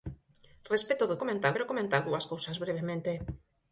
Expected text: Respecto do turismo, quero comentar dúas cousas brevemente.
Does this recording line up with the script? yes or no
no